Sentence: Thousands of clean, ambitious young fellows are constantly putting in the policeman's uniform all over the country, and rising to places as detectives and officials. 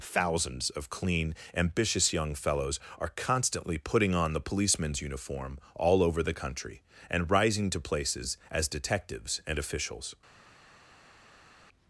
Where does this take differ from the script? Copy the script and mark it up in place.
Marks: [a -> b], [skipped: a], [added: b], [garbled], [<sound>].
Thousands of clean, ambitious young fellows are constantly putting [in -> on] the policeman's uniform all over the country, and rising to places as detectives and officials.